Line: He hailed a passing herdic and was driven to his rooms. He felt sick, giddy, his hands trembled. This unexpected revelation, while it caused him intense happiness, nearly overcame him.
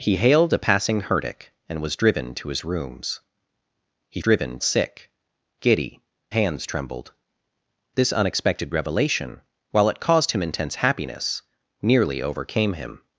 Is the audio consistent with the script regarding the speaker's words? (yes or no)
no